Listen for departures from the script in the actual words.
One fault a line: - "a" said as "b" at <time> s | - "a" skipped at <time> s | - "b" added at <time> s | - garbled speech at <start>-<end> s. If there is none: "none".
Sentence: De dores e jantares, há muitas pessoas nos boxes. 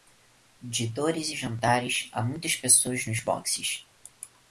none